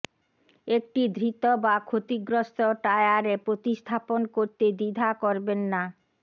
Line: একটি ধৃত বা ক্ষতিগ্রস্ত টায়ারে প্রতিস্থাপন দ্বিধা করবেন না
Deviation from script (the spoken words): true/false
true